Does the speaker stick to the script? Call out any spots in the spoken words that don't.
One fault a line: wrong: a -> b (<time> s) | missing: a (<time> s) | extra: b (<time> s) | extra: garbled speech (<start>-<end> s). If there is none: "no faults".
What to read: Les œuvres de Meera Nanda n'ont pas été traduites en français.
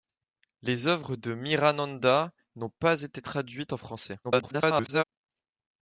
extra: garbled speech (4.2-5.0 s)